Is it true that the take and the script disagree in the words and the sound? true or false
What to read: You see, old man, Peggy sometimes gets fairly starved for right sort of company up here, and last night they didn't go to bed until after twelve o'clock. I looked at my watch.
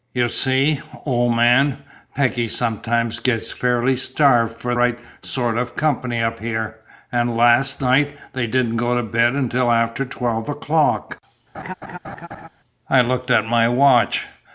true